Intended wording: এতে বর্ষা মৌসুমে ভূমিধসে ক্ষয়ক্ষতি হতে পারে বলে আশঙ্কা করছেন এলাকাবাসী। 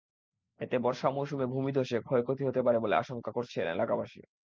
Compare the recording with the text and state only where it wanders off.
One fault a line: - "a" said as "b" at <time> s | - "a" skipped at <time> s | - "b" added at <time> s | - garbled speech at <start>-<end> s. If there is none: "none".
none